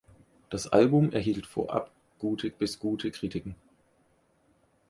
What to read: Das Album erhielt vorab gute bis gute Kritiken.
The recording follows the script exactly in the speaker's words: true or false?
true